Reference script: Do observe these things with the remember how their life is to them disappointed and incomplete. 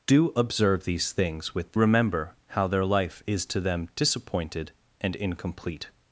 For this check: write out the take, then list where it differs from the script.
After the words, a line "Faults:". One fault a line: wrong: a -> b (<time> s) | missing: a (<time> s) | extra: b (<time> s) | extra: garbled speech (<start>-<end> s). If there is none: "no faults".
Do observe these things with the remember how their life is to them disappointed and incomplete.
Faults:
no faults